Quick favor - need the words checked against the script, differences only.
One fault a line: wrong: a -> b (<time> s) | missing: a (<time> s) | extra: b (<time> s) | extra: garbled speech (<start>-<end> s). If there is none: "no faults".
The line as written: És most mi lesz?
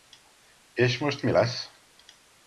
no faults